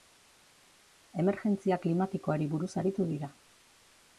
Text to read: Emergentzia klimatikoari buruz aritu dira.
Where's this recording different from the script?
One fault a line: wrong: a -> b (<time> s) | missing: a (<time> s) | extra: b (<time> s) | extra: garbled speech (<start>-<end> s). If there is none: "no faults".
no faults